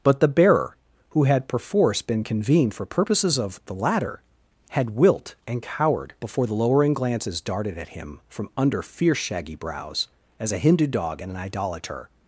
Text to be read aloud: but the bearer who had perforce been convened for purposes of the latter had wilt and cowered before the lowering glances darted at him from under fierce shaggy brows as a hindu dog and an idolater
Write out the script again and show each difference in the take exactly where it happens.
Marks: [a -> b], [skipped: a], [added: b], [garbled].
but the bearer who had perforce been convened for purposes of the latter had wilt and cowered before the lowering glances darted at him from under fierce shaggy brows as a hindu dog and an idolater